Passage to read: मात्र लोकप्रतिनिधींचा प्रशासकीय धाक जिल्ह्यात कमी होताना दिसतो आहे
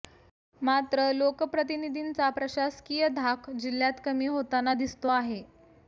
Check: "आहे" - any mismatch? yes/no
no